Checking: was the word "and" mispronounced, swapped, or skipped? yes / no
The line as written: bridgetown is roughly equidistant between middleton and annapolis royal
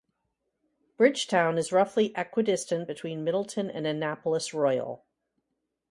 no